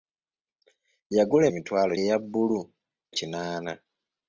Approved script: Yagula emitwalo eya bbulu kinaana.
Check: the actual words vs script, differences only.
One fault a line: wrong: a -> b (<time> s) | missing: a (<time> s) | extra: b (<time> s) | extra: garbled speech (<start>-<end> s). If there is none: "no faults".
no faults